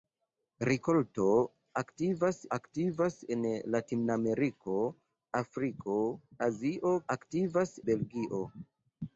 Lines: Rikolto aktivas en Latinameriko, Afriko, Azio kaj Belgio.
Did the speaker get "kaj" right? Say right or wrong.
wrong